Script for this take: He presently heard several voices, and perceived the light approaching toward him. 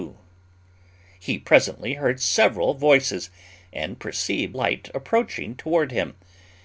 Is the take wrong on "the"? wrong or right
wrong